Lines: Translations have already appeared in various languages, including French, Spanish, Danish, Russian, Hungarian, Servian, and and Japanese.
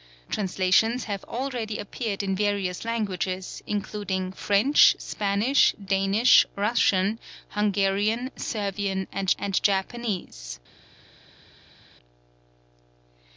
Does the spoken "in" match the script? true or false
true